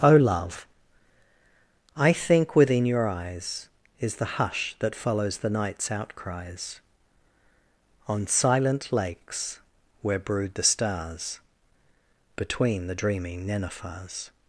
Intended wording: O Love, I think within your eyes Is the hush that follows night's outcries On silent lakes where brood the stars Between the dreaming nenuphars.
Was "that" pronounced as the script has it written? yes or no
yes